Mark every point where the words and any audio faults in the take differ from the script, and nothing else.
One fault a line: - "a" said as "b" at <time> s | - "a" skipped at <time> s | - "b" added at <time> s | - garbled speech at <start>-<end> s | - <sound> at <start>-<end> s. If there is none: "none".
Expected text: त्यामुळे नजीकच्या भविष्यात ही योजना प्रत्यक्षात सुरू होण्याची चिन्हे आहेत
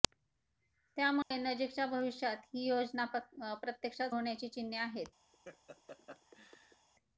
- dropout at 1.2-1.3 s
- "सुरू" skipped at 4.2 s
- laugh at 5.3-6.9 s